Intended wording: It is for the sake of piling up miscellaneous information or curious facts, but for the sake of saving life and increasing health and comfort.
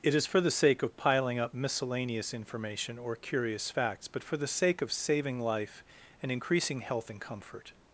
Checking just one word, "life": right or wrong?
right